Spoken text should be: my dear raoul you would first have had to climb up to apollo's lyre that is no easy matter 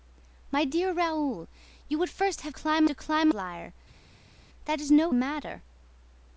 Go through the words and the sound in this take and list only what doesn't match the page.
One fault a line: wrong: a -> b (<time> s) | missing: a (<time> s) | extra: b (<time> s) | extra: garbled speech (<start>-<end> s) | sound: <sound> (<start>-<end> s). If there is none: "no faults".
wrong: had -> climb (2.5 s)
missing: up to apollo's (3.3 s)
missing: easy (5.1 s)